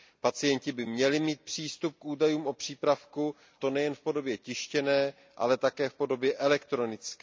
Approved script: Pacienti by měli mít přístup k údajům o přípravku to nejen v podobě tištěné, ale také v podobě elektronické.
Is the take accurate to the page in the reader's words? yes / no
yes